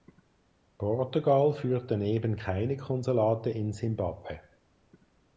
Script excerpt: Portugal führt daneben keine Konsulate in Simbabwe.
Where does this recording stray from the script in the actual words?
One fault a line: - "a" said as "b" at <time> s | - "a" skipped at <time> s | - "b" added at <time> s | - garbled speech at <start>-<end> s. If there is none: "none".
none